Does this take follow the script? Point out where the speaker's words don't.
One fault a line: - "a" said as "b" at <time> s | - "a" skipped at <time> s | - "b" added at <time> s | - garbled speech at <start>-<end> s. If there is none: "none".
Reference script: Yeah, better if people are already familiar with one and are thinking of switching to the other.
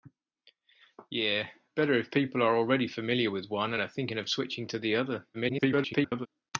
- garbled speech at 5.3-6.3 s